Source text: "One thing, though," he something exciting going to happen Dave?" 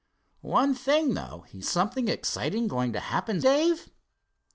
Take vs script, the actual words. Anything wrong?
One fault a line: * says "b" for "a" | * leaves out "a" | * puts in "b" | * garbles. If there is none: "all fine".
all fine